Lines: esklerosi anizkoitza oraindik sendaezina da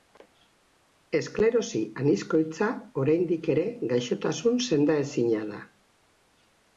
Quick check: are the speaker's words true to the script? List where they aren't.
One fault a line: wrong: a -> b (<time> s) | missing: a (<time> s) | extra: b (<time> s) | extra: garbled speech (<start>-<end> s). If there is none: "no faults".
extra: ere gaixotasun (3.5 s)